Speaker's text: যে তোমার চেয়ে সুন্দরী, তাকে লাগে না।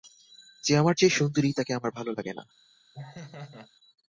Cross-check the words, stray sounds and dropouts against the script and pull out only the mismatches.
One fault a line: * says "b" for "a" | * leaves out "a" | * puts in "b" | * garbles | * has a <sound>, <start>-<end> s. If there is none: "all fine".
* says "আমার" for "তোমার"
* puts in "আমার ভালো"
* has a laugh, 2.9-3.7 s